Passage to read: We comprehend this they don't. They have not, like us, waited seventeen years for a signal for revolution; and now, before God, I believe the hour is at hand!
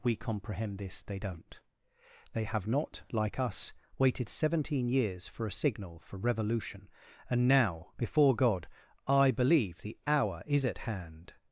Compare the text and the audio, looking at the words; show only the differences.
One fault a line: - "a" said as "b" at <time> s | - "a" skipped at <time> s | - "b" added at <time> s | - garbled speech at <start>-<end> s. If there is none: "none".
none